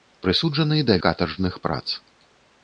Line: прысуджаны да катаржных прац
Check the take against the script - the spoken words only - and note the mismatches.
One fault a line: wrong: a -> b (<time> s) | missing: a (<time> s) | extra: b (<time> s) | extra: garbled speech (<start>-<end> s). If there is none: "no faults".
no faults